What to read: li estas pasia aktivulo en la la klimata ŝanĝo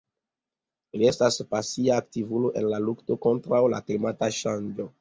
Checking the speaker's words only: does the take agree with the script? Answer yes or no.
no